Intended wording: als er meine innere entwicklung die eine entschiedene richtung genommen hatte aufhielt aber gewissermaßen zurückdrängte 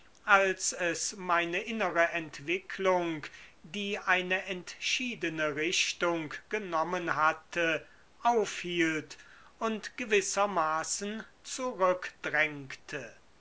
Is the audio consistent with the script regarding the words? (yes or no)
no